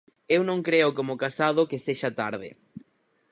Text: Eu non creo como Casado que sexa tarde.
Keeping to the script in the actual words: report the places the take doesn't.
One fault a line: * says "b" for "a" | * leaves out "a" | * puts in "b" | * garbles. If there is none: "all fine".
all fine